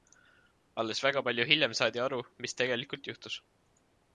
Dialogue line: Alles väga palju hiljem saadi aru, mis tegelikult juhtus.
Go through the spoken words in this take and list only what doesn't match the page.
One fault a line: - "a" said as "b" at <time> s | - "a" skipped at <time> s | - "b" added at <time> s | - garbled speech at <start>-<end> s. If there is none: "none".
none